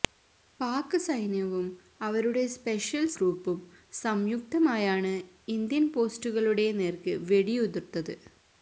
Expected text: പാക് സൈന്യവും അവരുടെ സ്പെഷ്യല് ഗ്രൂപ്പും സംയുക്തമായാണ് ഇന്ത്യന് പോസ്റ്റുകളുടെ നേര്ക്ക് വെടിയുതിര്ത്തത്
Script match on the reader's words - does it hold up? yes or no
yes